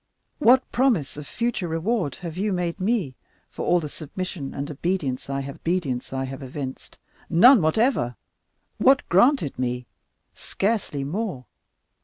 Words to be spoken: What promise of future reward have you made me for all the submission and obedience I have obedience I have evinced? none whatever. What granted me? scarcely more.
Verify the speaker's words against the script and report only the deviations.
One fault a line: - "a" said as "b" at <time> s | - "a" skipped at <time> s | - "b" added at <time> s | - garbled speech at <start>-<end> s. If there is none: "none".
none